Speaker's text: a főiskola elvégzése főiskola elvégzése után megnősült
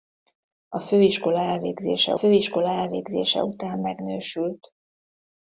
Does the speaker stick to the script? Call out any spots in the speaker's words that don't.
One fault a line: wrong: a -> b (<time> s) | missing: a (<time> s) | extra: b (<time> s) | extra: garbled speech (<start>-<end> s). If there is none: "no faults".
no faults